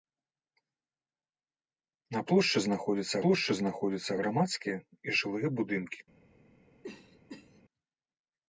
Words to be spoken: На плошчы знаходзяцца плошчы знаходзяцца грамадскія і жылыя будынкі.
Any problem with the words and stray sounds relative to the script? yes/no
yes